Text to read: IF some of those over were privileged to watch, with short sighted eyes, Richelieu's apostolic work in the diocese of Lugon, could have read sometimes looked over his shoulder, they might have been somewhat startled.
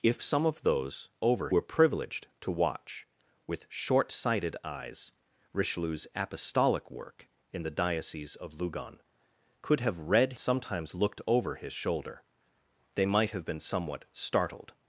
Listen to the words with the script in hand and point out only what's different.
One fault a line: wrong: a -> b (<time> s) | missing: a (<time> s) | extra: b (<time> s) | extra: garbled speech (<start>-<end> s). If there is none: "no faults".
no faults